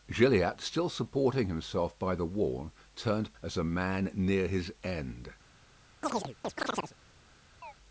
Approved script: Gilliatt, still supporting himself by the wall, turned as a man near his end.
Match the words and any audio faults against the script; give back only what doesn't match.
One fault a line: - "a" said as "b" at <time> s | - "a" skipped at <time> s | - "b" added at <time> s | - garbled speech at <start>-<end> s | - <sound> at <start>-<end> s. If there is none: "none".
- chirp at 6.0-7.0 s
- chirp at 7.6-7.7 s